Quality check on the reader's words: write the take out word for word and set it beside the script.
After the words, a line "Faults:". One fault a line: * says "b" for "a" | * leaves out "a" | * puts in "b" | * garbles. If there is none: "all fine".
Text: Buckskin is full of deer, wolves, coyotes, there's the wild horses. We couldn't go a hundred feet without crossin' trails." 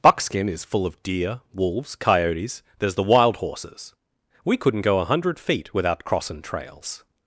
Buckskin is full of deer, wolves, coyotes, there's the wild horses. We couldn't go a hundred feet without crossin' trails."
Faults:
all fine